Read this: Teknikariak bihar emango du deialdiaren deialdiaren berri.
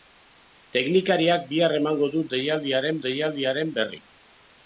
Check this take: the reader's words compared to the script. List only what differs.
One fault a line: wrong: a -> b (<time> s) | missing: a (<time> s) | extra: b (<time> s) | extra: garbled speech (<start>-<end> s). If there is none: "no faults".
no faults